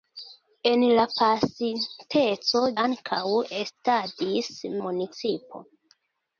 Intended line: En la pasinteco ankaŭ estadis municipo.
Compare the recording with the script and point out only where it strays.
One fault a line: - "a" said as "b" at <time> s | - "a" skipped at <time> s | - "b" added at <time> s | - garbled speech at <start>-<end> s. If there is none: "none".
none